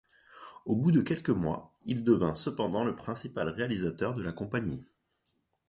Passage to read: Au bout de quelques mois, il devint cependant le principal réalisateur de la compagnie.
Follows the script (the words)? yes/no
yes